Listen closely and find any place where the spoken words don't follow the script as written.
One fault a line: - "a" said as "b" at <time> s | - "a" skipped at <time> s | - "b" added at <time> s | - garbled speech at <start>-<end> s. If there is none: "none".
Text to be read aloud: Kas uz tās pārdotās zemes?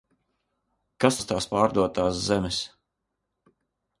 none